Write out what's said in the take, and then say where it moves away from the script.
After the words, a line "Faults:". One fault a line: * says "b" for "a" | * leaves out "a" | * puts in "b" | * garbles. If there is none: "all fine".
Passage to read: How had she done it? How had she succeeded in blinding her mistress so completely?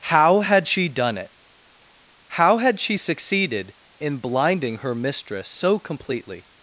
How had she done it? How had she succeeded in blinding her mistress so completely?
Faults:
all fine